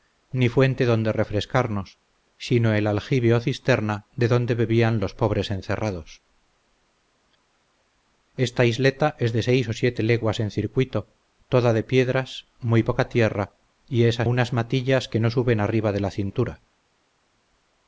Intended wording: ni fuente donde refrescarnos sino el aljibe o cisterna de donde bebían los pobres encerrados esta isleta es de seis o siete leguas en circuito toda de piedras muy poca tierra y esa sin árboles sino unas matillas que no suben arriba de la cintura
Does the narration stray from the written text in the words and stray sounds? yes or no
yes